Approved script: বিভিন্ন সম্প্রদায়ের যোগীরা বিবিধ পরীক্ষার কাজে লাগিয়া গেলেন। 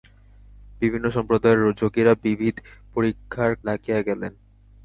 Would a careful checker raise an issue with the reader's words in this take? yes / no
yes